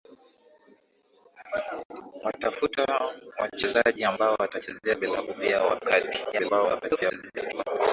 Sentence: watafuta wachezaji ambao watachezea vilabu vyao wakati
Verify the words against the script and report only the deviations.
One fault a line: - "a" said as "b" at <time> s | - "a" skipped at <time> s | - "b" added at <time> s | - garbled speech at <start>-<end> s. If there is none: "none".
- garbled speech at 6.3-7.6 s